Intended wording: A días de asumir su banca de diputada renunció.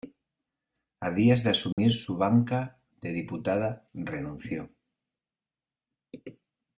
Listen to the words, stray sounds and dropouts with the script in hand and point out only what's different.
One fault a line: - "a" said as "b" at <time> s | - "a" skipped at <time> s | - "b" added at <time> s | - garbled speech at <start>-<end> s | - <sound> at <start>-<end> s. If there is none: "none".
- dropout at 1.7-1.8 s